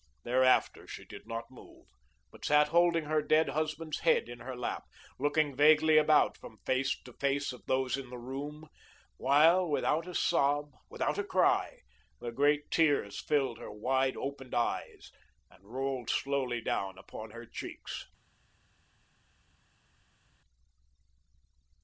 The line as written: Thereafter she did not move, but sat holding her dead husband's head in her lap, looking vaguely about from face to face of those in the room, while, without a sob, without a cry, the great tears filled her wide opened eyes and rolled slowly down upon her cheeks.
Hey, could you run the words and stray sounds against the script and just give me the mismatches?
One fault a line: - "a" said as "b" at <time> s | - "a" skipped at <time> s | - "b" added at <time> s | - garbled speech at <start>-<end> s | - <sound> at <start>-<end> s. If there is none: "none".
none